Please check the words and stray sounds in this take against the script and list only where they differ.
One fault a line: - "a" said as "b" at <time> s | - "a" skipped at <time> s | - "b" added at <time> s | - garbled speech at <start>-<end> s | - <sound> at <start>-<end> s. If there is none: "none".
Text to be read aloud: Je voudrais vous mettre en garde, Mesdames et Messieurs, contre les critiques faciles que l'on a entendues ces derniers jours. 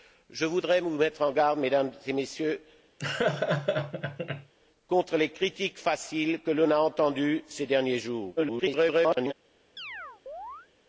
- laugh at 3.0-4.5 s
- garbled speech at 8.4-9.3 s
- chirp at 9.8-10.7 s